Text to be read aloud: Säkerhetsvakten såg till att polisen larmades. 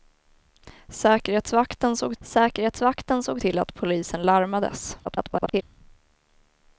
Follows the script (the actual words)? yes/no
no